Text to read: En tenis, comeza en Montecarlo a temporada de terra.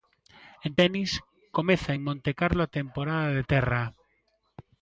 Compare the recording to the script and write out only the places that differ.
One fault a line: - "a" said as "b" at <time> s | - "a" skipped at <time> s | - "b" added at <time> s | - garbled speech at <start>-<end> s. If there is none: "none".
none